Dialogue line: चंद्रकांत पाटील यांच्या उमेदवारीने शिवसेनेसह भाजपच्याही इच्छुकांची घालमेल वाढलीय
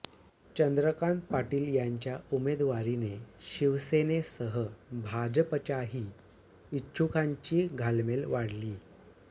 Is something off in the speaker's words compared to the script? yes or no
no